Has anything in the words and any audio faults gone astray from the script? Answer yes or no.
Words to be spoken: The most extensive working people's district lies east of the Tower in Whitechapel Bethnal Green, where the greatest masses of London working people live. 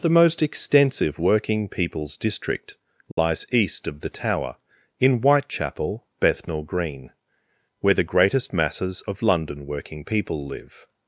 yes